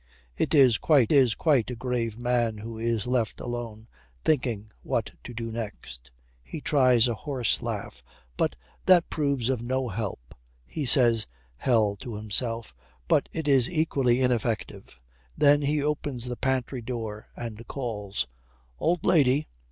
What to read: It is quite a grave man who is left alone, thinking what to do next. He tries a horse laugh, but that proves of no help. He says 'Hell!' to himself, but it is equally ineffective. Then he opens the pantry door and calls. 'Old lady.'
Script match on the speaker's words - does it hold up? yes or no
no